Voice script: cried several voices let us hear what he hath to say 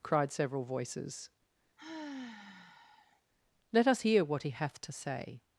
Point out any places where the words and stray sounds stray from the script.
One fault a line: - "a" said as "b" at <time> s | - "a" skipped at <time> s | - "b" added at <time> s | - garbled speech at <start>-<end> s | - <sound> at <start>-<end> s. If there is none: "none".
- sigh at 1.8-3.2 s